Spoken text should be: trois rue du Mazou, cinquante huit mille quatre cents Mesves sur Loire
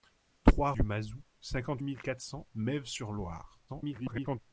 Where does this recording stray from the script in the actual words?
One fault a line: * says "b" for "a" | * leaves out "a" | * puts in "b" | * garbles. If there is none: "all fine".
* leaves out "rue"
* leaves out "huit"
* garbles